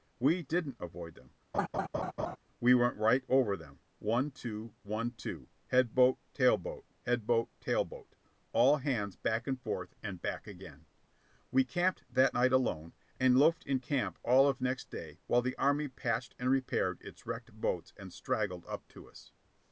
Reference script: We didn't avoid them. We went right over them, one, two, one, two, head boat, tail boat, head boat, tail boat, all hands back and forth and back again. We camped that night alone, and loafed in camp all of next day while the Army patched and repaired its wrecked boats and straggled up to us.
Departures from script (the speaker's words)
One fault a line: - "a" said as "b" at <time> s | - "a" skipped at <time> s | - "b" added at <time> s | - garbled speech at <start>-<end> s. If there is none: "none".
none